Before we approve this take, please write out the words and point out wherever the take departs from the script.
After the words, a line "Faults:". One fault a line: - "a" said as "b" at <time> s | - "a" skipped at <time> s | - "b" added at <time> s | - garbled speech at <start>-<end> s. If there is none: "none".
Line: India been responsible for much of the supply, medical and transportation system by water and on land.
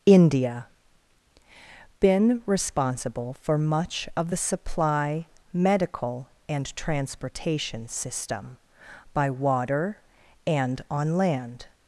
India been responsible for much of the supply, medical and transportation system by water and on land.
Faults:
none